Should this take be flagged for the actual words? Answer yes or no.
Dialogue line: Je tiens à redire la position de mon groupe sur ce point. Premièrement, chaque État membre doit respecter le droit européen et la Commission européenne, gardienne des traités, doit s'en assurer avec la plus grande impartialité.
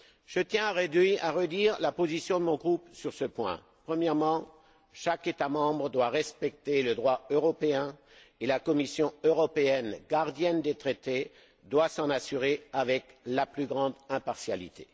no